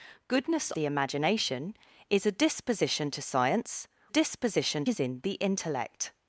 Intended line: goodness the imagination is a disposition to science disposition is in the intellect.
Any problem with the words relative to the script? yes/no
no